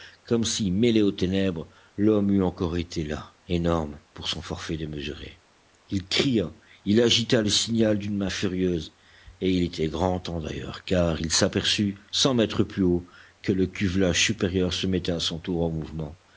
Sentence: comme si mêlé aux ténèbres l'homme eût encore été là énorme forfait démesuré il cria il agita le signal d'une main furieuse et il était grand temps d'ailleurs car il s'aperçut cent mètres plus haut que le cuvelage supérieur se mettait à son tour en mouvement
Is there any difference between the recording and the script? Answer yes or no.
yes